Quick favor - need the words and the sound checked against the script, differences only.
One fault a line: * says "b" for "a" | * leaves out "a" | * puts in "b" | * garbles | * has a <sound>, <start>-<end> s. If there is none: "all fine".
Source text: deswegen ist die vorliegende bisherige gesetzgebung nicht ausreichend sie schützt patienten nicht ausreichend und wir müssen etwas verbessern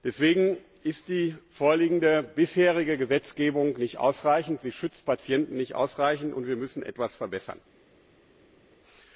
all fine